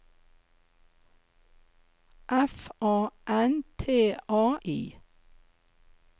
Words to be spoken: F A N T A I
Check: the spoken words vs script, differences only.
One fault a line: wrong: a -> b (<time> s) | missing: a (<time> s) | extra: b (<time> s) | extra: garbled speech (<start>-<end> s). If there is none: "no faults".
no faults